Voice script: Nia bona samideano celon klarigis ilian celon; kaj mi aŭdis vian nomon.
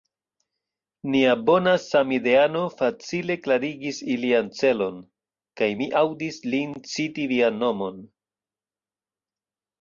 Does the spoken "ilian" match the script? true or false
true